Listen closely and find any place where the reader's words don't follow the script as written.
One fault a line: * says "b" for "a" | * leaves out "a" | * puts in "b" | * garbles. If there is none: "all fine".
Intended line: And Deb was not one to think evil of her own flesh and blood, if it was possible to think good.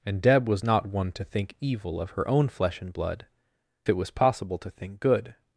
* leaves out "if"